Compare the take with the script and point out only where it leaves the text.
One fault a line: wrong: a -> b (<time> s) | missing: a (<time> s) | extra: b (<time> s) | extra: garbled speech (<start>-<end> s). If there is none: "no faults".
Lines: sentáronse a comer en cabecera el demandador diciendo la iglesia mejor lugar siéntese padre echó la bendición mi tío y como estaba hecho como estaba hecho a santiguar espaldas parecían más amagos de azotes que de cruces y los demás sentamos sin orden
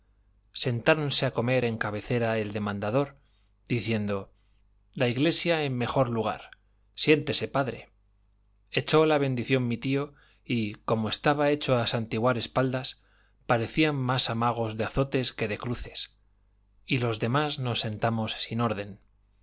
extra: en (5.6 s)
missing: como estaba hecho (11.8 s)
extra: nos (17.6 s)